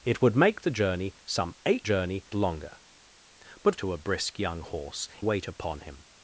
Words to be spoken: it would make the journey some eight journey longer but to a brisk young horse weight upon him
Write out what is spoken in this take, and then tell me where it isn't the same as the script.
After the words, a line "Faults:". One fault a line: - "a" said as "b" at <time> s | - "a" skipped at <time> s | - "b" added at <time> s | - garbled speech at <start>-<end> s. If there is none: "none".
it would make the journey some eight journey longer but to a brisk young horse weight upon him
Faults:
none